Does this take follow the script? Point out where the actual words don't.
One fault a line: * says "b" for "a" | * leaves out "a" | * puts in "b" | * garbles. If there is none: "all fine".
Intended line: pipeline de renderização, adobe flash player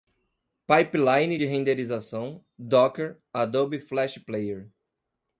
* puts in "docker"